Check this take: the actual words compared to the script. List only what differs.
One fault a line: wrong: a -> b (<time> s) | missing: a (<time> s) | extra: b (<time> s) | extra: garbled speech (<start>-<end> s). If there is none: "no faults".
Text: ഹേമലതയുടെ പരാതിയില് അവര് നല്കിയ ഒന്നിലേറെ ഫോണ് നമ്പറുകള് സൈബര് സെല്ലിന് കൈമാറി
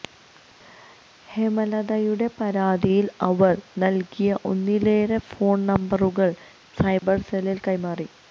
no faults